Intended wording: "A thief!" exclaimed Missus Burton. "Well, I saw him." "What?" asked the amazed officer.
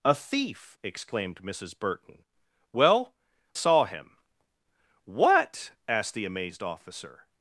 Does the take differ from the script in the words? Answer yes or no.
yes